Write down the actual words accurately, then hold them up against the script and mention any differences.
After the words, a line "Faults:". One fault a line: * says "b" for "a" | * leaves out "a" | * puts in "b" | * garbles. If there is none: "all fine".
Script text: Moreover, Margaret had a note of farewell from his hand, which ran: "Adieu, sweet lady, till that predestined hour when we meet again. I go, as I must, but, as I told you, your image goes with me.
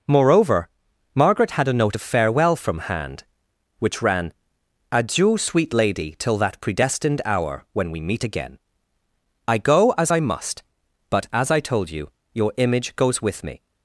Moreover, Margaret had a note of farewell from hand, which ran: "Adieu, sweet lady, till that predestined hour when we meet again. I go, as I must, but, as I told you, your image goes with me.
Faults:
* leaves out "his"